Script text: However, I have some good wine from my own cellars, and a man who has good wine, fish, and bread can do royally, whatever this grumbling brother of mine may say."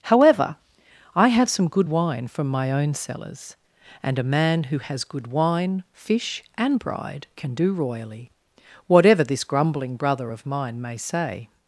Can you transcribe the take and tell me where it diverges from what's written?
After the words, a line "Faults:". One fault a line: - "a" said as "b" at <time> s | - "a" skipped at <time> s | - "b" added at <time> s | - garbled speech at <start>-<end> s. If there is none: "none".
However, I have some good wine from my own cellars, and a man who has good wine, fish, and bride can do royally, whatever this grumbling brother of mine may say."
Faults:
- "bread" said as "bride" at 6.8 s